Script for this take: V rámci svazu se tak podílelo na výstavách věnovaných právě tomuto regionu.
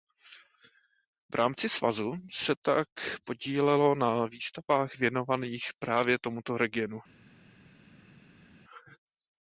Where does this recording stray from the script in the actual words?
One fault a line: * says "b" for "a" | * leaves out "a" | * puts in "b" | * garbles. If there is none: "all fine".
all fine